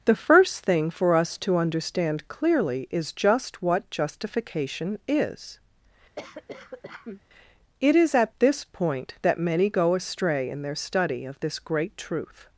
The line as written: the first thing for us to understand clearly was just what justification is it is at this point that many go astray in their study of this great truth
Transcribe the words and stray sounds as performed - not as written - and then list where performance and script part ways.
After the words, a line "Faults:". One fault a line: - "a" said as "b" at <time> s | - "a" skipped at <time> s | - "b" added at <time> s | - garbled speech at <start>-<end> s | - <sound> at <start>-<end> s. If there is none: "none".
the first thing for us to understand clearly is just what justification is it is at this point that many go astray in their study of this great truth
Faults:
- "was" said as "is" at 2.9 s
- cough at 6.2-7.2 s